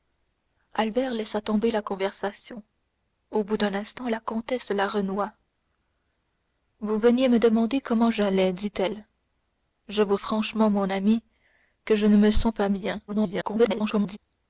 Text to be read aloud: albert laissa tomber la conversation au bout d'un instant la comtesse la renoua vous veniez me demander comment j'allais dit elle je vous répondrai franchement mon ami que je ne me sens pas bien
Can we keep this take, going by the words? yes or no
no